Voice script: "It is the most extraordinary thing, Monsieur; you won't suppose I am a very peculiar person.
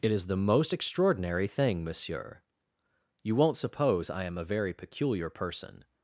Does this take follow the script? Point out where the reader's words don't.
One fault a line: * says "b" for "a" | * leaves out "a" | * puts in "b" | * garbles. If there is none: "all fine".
all fine